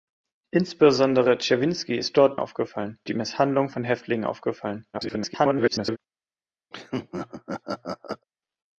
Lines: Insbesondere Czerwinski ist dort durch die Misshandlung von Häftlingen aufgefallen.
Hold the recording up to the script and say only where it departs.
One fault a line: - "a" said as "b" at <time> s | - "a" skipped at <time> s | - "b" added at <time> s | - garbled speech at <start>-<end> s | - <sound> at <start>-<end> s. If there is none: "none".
- "durch" said as "aufgefallen" at 2.4 s
- garbled speech at 4.9-6.0 s
- laugh at 6.7-8.3 s